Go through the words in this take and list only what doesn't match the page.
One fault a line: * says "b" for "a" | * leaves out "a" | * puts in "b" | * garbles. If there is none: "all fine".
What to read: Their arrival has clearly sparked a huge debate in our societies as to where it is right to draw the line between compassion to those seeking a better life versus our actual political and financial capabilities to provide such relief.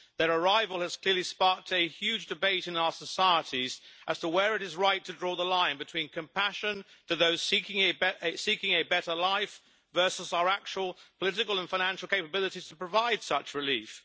all fine